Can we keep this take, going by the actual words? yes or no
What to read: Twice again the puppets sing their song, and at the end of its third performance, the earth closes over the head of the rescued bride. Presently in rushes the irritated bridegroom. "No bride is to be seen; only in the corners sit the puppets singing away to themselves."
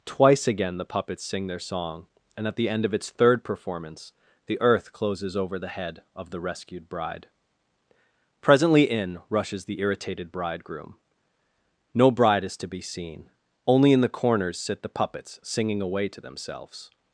yes